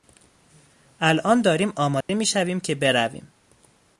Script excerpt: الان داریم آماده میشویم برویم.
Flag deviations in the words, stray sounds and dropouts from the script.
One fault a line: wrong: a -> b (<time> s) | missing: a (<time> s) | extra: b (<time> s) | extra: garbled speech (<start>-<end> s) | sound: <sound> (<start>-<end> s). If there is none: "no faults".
sound: dropout (2.0-2.1 s)
extra: که (2.6 s)